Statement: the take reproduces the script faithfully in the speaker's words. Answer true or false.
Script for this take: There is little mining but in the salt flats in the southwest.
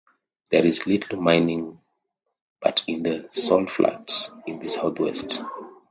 true